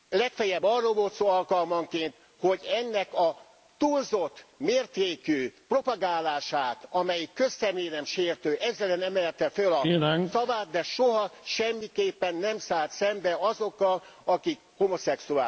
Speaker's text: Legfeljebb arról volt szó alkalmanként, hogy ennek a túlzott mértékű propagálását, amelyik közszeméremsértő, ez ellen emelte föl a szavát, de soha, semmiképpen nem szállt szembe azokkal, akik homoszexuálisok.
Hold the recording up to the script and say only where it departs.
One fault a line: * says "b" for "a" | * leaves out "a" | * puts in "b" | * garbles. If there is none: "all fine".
all fine